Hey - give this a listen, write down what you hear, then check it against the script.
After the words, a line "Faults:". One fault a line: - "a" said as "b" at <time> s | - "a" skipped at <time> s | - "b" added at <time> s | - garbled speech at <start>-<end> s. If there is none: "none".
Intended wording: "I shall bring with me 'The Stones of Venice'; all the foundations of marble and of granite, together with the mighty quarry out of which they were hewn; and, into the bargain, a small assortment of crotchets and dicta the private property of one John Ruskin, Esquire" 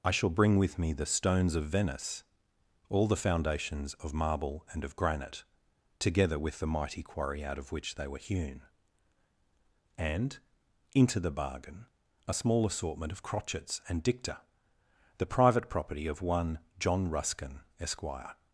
"I shall bring with me 'The Stones of Venice'; all the foundations of marble and of granite, together with the mighty quarry out of which they were hewn; and, into the bargain, a small assortment of crotchets and dicta the private property of one John Ruskin, Esquire"
Faults:
none